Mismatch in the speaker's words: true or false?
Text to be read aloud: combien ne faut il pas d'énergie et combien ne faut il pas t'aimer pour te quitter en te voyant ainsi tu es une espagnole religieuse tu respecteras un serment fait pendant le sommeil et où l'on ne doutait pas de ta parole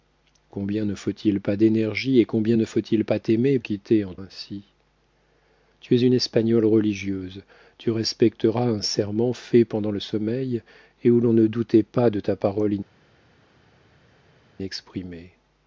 true